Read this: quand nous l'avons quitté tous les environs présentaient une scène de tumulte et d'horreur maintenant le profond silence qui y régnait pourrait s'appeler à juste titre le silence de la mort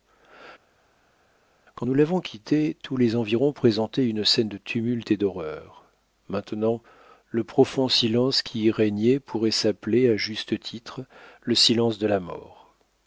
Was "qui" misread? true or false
false